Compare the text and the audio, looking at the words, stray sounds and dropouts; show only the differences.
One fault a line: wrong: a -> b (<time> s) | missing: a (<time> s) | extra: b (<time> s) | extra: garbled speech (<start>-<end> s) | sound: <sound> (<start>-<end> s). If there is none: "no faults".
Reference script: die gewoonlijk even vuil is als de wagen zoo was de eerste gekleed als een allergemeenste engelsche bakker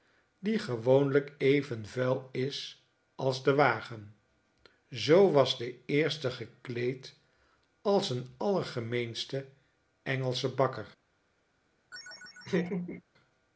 sound: laugh (11.9-13.0 s)